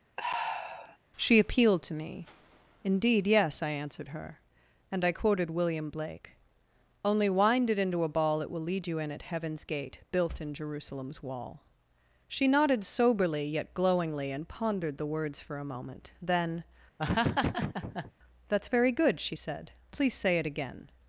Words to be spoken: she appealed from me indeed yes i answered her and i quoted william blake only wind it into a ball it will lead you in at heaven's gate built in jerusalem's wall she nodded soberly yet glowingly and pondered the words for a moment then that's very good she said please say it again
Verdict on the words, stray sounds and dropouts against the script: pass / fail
fail